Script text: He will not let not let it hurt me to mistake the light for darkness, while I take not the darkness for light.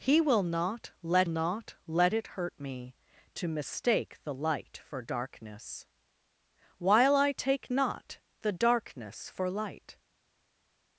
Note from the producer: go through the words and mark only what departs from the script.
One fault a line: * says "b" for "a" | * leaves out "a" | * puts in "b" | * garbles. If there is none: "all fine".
all fine